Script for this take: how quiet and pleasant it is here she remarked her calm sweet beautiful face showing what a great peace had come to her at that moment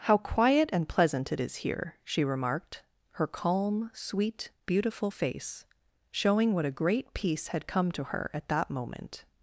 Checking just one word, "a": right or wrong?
right